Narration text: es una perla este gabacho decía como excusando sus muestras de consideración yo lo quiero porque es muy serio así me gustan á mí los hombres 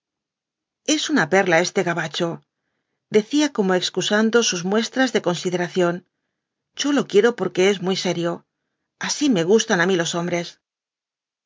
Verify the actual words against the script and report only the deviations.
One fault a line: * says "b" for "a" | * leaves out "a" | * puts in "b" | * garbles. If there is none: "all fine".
all fine